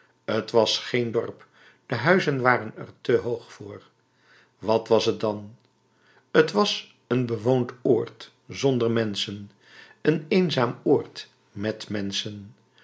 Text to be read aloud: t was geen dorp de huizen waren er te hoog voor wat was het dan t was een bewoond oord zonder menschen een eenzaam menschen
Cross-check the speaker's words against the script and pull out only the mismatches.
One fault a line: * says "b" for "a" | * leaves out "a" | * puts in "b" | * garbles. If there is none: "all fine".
* puts in "oord met"